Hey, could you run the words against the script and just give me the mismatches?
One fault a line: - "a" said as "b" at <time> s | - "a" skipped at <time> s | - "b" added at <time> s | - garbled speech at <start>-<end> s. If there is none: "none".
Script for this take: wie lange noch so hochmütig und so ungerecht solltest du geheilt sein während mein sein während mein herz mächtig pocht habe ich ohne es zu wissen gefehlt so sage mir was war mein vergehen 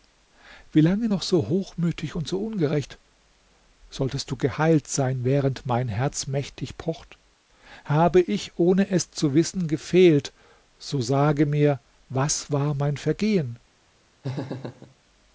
- "sein während mein" skipped at 5.9 s